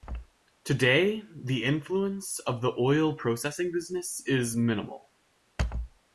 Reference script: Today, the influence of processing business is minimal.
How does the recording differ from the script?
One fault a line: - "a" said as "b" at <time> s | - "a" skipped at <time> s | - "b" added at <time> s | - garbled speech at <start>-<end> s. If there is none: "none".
- "the oil" added at 2.6 s